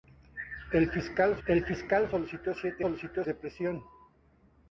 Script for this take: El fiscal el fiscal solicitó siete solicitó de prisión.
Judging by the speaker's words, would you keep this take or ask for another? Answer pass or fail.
pass